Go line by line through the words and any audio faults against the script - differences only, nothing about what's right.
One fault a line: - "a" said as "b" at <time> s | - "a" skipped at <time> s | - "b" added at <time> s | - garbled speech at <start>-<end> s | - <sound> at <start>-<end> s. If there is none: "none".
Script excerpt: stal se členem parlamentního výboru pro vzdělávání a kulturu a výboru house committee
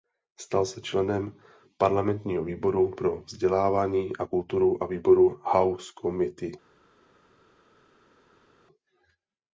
none